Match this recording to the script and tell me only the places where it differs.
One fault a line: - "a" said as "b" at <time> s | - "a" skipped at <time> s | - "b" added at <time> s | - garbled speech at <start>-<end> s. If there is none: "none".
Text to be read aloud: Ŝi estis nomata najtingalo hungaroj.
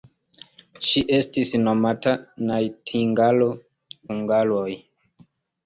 none